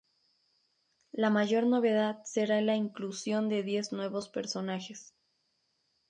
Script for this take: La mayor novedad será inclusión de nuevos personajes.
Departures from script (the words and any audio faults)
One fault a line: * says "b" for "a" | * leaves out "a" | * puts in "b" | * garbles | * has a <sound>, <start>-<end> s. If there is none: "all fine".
* puts in "la"
* puts in "diez"